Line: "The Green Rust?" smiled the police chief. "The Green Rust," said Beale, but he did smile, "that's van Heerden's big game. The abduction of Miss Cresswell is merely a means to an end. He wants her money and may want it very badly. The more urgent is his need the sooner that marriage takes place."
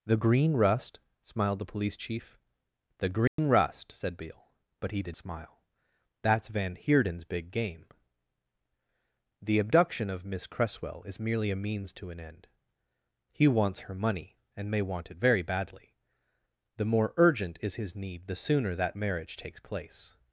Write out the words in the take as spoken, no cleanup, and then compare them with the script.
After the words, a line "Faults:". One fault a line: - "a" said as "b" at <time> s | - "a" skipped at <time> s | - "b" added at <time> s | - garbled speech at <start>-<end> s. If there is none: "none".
"The Green Rust?" smiled the police chief. "The Green Rust," said Beale, but he did smile, "that's van Heerden's big game. The abduction of Miss Cresswell is merely a means to an end. He wants her money and may want it very badly. The more urgent is his need the sooner that marriage takes place."
Faults:
none